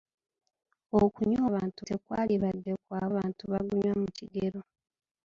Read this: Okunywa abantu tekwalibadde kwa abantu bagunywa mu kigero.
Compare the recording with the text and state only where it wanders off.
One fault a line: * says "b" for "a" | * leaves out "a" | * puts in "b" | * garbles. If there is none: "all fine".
all fine